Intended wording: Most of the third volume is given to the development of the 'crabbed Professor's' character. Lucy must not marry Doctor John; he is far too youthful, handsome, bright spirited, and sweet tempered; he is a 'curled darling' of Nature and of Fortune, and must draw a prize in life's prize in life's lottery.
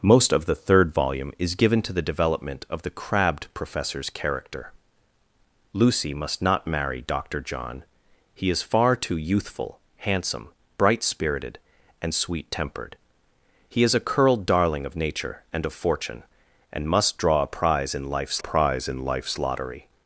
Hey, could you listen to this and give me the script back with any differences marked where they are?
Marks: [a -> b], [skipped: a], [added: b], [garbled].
Most of the third volume is given to the development of the 'crabbed Professor's' character. Lucy must not marry Doctor John; he is far too youthful, handsome, bright spirited, and sweet tempered; he is a 'curled darling' of Nature and of Fortune, and must draw a prize in life's prize in life's lottery.